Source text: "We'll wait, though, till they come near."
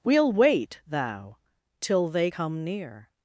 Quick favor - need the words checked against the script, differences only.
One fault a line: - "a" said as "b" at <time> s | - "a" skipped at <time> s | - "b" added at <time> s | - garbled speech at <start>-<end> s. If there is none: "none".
- "though" said as "thou" at 0.9 s